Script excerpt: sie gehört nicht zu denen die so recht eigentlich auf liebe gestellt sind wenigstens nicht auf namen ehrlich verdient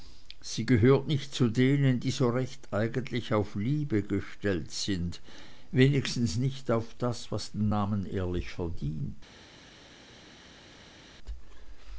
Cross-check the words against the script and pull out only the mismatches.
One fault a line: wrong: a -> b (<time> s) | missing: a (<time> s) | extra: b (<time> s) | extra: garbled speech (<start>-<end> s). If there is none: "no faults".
extra: das was den (7.0 s)